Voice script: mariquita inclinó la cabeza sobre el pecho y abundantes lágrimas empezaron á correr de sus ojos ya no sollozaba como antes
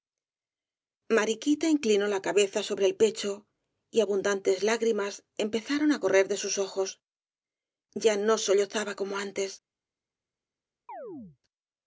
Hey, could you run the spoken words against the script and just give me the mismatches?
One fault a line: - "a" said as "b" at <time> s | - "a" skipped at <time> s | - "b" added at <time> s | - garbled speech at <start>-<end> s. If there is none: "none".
none